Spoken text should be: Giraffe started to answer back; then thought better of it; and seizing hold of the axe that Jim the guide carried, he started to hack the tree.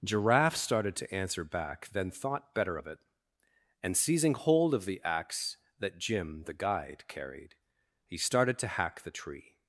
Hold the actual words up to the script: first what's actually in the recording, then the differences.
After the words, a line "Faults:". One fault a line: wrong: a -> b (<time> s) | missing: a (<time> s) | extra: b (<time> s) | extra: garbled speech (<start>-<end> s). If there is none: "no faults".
Giraffe started to answer back; then thought better of it; and seizing hold of the axe that Jim the guide carried, he started to hack the tree.
Faults:
no faults